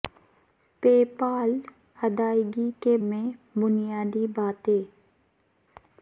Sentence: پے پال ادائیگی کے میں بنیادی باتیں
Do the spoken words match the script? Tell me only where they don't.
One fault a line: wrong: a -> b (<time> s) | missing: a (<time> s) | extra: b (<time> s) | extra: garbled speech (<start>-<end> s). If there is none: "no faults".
no faults